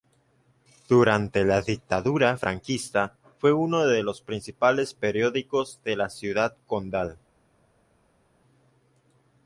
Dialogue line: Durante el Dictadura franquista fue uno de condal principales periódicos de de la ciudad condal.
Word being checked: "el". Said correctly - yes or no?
no